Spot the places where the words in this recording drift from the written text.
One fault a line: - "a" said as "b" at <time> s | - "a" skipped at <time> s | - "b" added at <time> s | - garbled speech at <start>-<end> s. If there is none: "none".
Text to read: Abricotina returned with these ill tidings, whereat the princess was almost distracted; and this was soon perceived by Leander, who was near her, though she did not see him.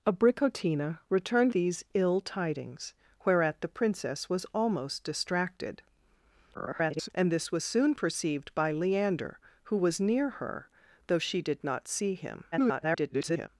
- "with" skipped at 1.5 s
- garbled speech at 6.5-7.1 s
- garbled speech at 12.5-13.5 s